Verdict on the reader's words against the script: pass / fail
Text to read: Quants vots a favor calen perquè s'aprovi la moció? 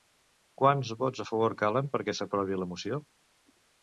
pass